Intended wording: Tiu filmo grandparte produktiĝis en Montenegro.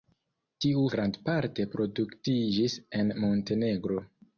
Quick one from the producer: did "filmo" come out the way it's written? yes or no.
no